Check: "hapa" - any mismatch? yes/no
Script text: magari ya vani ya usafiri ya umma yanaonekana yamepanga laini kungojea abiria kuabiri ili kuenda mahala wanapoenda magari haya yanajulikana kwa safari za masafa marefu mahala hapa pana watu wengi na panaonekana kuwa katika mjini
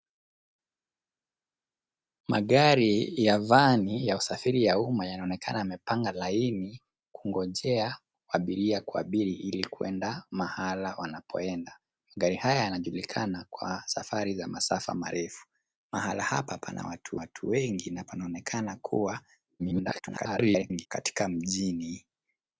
no